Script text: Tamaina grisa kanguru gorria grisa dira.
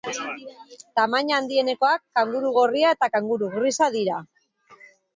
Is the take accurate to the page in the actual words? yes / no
no